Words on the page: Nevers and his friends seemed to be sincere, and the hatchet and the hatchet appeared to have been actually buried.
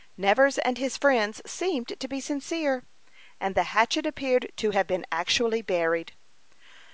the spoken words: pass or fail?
fail